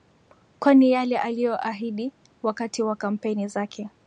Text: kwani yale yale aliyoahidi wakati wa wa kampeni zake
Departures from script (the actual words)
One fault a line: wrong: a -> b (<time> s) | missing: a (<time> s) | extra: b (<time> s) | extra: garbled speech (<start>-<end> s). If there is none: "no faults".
missing: yale (1.2 s)
missing: wa (3.0 s)